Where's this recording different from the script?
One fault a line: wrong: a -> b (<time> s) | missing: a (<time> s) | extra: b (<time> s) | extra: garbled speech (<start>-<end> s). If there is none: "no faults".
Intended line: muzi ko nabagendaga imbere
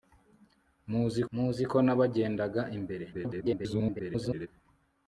extra: muzi (1.3 s)
extra: garbled speech (3.1-4.5 s)